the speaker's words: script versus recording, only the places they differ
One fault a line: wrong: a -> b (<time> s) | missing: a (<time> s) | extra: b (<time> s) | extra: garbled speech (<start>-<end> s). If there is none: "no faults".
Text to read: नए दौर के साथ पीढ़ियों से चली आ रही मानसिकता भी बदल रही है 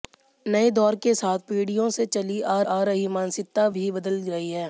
extra: आ (2.7 s)